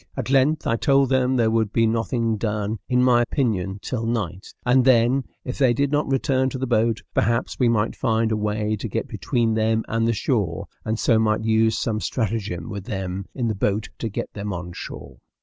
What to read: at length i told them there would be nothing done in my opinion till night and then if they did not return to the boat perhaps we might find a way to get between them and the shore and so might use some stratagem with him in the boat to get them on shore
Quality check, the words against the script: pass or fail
fail